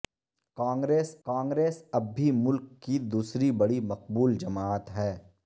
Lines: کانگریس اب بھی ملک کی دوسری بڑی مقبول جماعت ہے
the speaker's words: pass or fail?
fail